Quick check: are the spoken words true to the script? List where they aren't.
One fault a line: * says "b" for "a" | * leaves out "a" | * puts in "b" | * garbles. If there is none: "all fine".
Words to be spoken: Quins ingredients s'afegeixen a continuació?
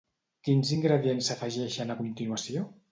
all fine